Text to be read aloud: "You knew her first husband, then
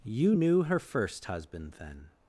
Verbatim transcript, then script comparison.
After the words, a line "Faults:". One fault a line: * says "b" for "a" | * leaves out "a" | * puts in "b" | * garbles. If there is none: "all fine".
"You knew her first husband, then
Faults:
all fine